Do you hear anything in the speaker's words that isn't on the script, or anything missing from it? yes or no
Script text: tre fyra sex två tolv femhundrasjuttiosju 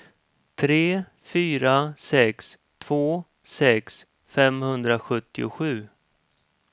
yes